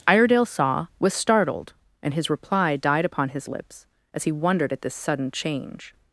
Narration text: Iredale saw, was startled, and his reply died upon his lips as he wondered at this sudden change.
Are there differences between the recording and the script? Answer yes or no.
no